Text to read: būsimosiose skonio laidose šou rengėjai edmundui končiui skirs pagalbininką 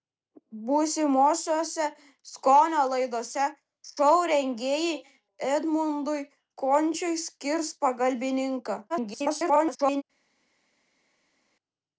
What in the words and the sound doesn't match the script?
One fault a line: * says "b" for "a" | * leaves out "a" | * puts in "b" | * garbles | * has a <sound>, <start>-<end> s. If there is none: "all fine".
* garbles